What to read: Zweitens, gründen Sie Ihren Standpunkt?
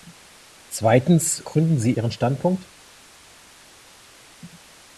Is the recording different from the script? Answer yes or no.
no